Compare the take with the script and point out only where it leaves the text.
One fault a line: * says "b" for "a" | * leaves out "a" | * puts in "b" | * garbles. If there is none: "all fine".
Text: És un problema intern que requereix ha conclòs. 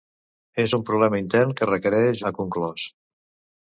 all fine